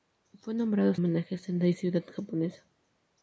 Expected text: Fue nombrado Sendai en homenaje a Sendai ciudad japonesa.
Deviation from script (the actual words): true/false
true